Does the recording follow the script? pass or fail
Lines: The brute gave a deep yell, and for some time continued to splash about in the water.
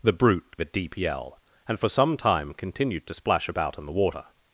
fail